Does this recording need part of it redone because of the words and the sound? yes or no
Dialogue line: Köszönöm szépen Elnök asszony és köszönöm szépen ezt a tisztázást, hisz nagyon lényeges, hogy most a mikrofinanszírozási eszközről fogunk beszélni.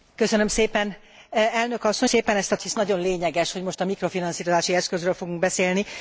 yes